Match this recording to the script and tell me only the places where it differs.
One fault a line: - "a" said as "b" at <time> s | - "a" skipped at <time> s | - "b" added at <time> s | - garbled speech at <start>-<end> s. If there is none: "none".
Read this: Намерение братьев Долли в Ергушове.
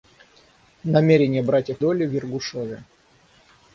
none